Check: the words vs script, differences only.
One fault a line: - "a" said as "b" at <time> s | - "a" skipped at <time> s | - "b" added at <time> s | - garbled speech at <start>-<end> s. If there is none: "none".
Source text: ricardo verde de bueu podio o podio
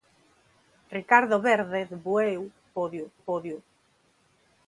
none